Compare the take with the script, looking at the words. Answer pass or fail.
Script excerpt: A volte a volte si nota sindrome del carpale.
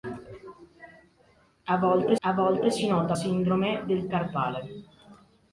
pass